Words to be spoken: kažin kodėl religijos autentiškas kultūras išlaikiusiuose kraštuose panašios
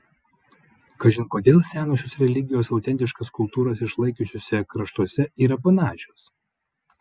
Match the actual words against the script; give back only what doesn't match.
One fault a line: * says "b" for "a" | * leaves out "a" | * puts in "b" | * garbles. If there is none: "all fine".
* puts in "senosios"
* puts in "yra"